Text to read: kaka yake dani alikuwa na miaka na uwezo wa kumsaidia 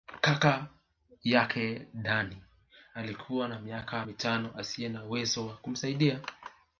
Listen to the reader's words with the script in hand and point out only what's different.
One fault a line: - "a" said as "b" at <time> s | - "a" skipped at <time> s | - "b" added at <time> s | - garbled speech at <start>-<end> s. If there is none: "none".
- "mitano asiye" added at 4.0 s